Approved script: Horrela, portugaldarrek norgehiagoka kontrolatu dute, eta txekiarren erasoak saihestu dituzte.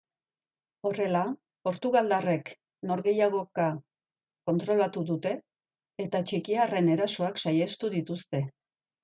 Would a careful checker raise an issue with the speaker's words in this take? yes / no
no